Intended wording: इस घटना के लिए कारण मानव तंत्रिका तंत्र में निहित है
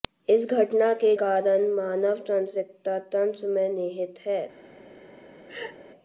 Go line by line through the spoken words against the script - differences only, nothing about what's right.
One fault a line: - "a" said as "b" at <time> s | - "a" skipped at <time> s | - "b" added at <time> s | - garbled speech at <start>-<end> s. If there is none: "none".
- "लिए" skipped at 1.1 s